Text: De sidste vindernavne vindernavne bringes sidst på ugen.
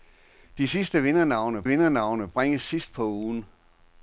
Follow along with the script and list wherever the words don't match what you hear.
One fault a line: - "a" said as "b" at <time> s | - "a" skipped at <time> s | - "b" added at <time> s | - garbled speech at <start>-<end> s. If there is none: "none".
none